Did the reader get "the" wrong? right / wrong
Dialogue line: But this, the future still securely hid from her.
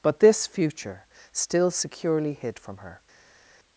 wrong